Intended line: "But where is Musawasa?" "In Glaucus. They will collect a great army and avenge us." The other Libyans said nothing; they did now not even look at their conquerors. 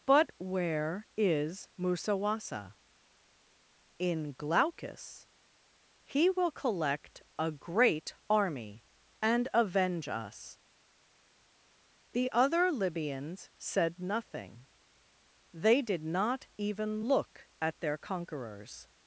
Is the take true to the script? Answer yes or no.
no